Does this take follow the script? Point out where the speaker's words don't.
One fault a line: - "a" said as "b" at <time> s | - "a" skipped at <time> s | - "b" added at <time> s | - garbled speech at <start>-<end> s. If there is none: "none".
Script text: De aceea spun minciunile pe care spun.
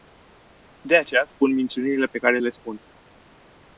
- "le" added at 2.4 s